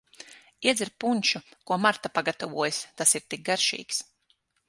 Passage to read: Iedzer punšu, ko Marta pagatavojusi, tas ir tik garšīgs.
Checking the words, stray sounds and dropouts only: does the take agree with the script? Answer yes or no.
yes